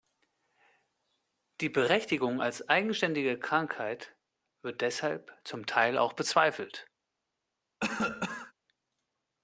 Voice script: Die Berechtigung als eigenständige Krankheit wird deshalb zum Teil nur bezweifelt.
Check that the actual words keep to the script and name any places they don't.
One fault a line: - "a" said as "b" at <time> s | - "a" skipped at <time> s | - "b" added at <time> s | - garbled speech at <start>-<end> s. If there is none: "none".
- "nur" said as "auch" at 6.0 s